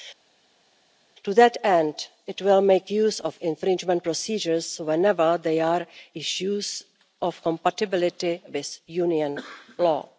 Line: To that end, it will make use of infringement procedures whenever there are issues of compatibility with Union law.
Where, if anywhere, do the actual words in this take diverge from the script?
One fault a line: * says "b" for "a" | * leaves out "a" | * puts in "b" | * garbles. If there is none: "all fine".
all fine